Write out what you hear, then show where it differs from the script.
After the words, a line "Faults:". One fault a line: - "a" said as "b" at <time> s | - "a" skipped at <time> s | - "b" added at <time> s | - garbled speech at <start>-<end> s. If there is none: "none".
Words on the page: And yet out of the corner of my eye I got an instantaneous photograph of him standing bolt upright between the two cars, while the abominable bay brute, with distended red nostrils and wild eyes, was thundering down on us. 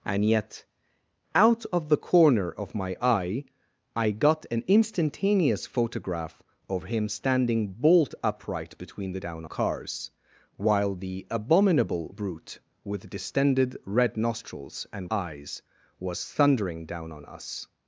And yet out of the corner of my eye I got an instantaneous photograph of him standing bolt upright between the down cars, while the abominable brute, with distended red nostrils and eyes, was thundering down on us.
Faults:
- "two" said as "down" at 9.2 s
- "bay" skipped at 12.1 s
- "wild" skipped at 15.1 s